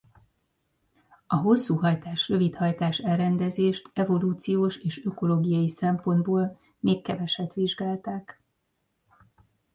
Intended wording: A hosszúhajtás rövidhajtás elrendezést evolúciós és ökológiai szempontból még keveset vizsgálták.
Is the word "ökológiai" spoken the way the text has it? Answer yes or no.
yes